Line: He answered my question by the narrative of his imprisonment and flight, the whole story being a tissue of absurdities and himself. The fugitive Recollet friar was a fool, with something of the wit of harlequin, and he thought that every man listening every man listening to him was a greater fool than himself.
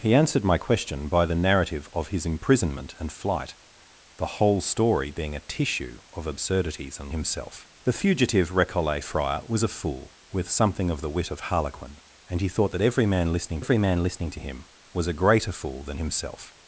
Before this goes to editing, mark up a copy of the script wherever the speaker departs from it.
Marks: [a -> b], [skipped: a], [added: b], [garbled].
He answered my question by the narrative of his imprisonment and flight, the whole story being a tissue of absurdities and himself. The fugitive Recollet friar was a fool, with something of the wit of harlequin, and he thought that every man listening every man listening to him was a greater fool than himself.